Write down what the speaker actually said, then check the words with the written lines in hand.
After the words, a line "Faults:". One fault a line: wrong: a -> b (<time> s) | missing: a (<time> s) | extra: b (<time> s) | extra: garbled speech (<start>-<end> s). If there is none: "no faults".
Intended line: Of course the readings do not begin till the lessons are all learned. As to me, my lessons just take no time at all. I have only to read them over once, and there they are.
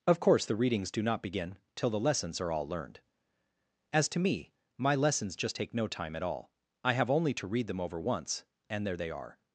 Of course the readings do not begin till the lessons are all learned. As to me, my lessons just take no time at all. I have only to read them over once, and there they are.
Faults:
no faults